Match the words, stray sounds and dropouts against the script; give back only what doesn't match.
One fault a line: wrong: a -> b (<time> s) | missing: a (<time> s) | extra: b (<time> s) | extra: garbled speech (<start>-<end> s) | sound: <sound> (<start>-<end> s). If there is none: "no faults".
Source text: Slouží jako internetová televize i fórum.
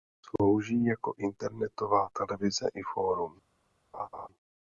sound: laugh (3.9-4.3 s)